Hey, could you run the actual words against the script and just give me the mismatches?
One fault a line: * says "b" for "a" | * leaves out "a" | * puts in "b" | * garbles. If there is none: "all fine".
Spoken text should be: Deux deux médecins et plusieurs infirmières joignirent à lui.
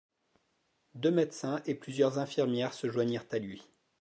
* leaves out "deux"
* puts in "se"